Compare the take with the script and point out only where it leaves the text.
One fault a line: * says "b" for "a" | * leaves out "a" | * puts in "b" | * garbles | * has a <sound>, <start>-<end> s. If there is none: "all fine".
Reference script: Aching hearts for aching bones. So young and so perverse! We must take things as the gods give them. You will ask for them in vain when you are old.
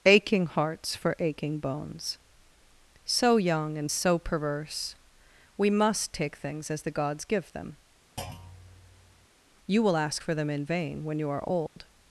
* has a thud, 8.2-9.3 s
* has a dropout, 11.7-11.8 s